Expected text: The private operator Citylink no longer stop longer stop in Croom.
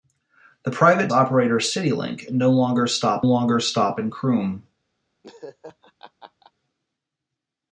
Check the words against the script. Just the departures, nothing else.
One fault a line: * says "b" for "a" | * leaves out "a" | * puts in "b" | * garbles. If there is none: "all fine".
all fine